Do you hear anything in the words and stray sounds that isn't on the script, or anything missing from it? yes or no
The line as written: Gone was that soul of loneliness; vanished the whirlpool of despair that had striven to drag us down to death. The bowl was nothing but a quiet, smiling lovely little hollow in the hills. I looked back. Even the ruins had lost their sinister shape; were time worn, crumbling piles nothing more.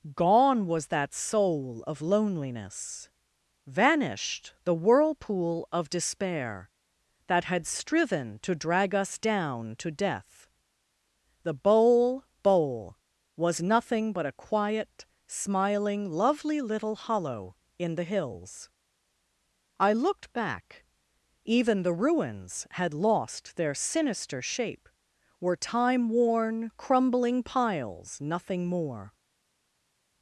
yes